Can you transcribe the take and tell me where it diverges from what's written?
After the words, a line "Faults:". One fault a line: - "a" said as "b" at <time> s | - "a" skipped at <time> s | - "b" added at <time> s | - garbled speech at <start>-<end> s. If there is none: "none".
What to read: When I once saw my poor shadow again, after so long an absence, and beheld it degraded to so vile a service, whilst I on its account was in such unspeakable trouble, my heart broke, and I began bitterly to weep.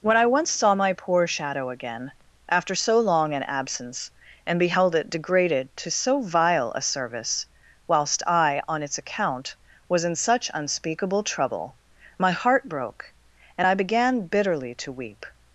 When I once saw my poor shadow again, after so long an absence, and beheld it degraded to so vile a service, whilst I on its account was in such unspeakable trouble, my heart broke, and I began bitterly to weep.
Faults:
none